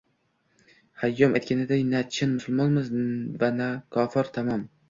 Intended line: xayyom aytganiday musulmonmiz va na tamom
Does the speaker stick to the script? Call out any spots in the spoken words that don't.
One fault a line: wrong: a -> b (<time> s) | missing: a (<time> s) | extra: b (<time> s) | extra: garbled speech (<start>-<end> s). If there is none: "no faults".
extra: na chin (1.9 s)
extra: kofir (4.0 s)